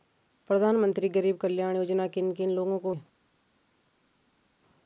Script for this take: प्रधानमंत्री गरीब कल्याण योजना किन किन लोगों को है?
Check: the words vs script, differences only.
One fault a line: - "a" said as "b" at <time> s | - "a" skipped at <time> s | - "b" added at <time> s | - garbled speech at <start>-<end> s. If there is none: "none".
none